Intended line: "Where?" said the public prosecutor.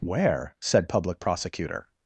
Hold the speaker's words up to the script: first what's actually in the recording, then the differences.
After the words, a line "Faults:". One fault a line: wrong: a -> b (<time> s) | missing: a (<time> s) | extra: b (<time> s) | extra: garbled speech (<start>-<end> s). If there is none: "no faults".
"Where?" said public prosecutor.
Faults:
missing: the (0.9 s)